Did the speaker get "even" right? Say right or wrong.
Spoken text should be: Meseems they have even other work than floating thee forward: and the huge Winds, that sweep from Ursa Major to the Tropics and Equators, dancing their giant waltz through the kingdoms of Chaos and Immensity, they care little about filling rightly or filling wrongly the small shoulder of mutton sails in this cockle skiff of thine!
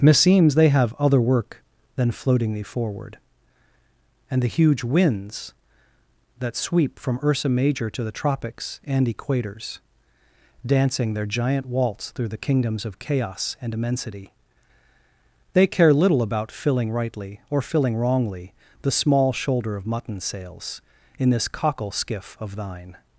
wrong